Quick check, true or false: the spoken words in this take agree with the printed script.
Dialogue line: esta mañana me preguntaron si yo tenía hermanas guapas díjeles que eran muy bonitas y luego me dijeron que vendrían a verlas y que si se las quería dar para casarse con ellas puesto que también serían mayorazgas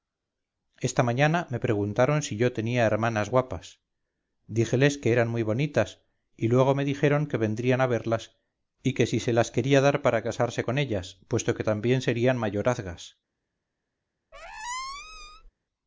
true